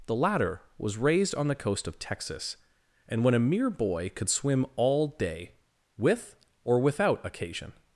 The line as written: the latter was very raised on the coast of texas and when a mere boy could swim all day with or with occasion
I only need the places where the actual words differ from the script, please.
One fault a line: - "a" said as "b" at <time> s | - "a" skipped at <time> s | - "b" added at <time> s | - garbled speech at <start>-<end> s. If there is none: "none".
- "very" skipped at 1.0 s
- "with" said as "without" at 6.8 s